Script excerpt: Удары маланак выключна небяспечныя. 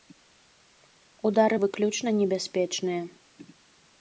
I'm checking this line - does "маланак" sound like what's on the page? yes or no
no